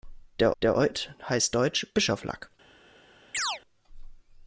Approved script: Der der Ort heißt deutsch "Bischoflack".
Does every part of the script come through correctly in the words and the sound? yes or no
no